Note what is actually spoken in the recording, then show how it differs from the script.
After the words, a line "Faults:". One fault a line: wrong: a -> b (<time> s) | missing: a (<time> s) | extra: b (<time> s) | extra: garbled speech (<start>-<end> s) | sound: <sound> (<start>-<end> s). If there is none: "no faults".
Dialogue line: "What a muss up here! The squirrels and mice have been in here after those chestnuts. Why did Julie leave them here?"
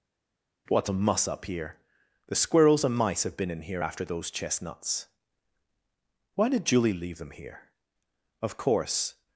"What a muss up here! The squirrels and mice have been in here after those chestnuts. Why did Julie leave them here?" Of course
Faults:
extra: Of course (8.4 s)